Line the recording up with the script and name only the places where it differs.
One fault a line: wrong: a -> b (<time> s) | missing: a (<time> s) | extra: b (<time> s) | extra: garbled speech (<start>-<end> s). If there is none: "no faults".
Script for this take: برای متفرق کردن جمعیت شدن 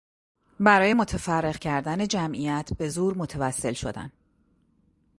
extra: به زور متوسل (2.8 s)